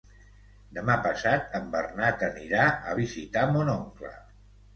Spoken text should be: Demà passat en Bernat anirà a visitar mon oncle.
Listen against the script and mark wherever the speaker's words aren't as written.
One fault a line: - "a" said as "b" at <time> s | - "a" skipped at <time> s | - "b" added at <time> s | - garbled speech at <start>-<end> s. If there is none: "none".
none